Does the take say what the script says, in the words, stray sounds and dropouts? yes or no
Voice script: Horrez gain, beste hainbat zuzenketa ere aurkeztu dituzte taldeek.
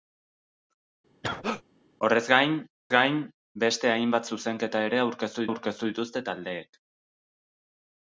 no